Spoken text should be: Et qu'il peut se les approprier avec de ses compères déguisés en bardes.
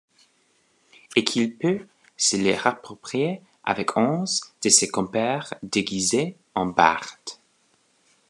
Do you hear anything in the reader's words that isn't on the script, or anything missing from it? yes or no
yes